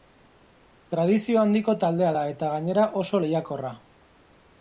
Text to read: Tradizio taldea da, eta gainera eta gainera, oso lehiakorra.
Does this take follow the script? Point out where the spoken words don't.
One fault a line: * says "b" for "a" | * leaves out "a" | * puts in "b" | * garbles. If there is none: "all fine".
* puts in "handiko"
* leaves out "eta gainera"